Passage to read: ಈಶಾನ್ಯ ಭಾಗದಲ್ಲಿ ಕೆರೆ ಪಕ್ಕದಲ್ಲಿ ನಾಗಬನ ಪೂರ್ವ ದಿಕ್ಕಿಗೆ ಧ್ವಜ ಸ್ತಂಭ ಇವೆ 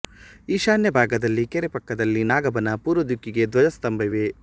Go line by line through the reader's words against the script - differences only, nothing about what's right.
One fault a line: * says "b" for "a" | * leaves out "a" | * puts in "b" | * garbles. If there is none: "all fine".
all fine